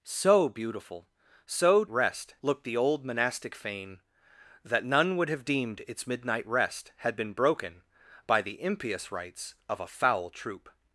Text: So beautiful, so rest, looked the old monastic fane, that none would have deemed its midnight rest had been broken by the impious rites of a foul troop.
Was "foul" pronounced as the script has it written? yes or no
yes